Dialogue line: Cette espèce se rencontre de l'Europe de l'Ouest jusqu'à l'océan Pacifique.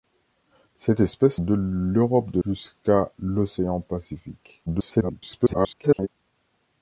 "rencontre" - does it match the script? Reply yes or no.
no